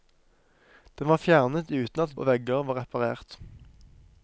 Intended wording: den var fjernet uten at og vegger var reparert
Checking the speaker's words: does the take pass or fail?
pass